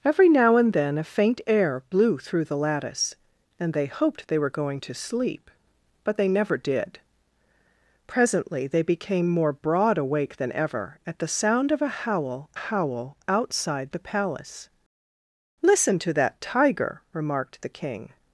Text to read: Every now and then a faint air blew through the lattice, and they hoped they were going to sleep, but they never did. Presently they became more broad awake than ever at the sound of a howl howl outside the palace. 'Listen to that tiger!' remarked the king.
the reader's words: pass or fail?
pass